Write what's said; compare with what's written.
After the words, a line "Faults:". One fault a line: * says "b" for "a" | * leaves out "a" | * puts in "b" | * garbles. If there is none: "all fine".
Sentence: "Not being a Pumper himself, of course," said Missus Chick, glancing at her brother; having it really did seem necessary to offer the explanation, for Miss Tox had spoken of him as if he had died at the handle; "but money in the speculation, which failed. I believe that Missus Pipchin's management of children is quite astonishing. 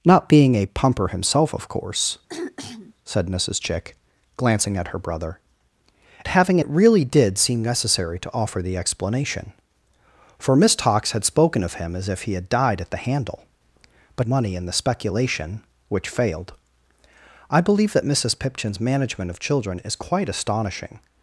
"Not being a Pumper himself, of course," said Missus Chick, glancing at her brother; having it really did seem necessary to offer the explanation, for Miss Tox had spoken of him as if he had died at the handle; "but money in the speculation, which failed. I believe that Missus Pipchin's management of children is quite astonishing.
Faults:
all fine